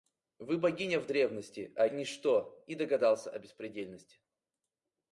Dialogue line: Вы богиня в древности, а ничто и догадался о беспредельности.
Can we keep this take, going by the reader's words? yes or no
yes